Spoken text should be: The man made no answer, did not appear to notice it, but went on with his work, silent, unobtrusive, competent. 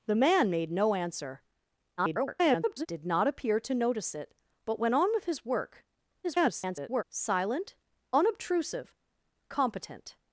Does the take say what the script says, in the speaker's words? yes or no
no